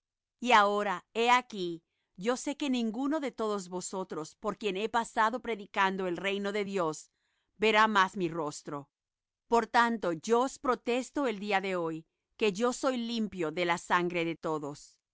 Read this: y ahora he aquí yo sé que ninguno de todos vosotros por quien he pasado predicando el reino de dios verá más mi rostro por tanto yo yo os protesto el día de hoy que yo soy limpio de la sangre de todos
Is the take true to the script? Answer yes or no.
no